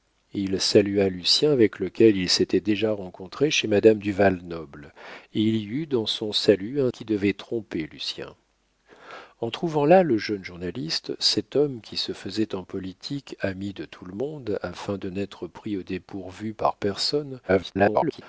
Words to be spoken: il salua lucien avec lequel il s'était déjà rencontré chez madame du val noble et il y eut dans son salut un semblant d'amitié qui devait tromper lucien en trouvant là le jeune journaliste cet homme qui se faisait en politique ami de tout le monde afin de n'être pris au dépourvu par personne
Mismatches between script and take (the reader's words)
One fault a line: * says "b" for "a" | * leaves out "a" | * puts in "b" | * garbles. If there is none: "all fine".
* leaves out "semblant d'amitié"
* garbles